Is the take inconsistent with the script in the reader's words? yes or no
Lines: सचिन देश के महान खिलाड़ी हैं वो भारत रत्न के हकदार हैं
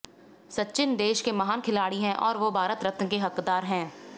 yes